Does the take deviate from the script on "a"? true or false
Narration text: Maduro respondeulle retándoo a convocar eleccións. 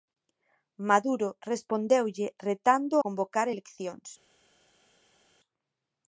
true